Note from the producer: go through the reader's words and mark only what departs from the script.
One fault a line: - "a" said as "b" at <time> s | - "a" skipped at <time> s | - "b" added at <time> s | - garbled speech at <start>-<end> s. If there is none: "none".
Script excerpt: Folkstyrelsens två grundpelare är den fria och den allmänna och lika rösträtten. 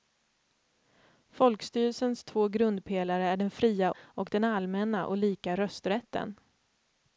none